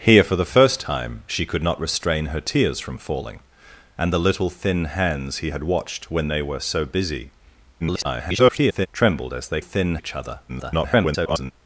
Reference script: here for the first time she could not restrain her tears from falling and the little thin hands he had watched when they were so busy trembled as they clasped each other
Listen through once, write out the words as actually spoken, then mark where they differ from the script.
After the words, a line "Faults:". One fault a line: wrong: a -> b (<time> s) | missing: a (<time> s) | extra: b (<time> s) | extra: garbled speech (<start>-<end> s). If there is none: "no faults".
here for the first time she could not restrain her tears from falling and the little thin hands he had watched when they were so busy [garbled] trembled as they thin each other [garbled]
Faults:
extra: garbled speech (7.8-8.9 s)
wrong: clasped -> thin (9.6 s)
extra: garbled speech (10.5-11.5 s)